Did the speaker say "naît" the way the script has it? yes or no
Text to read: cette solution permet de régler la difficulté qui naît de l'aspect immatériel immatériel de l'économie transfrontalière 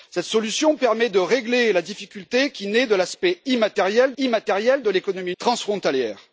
yes